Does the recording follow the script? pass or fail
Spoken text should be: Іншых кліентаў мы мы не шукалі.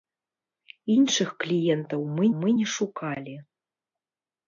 pass